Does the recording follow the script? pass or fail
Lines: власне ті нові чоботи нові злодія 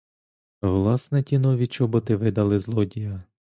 fail